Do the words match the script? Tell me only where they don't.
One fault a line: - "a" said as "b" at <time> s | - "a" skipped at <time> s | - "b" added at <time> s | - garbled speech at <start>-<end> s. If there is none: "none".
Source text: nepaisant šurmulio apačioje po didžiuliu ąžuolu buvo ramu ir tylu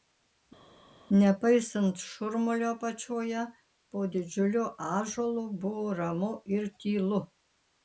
none